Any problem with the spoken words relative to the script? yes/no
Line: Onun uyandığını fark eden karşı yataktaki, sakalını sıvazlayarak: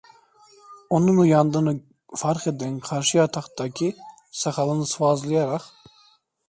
no